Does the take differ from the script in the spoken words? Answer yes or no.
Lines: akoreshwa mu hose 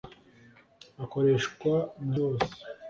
no